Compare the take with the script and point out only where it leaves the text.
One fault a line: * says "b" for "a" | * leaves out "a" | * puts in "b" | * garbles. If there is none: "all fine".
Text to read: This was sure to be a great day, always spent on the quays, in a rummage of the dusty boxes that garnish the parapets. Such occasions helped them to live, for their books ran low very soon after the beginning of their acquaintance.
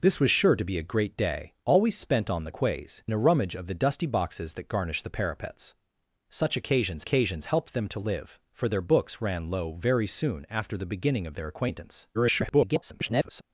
* leaves out "in"
* puts in "occasions"
* garbles